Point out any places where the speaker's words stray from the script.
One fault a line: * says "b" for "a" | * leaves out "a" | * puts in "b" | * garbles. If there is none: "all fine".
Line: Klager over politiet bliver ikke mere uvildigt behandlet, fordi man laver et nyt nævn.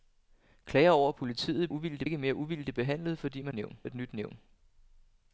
* says "uvildigt" for "bliver"
* says "nævn" for "laver"